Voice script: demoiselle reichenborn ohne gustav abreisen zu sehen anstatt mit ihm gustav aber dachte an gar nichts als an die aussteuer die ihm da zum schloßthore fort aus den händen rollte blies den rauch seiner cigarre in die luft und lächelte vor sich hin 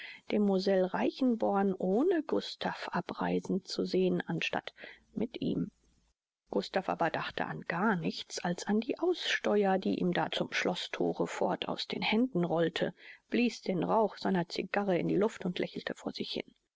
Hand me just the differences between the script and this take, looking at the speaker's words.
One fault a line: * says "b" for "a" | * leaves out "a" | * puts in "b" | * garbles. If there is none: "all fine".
all fine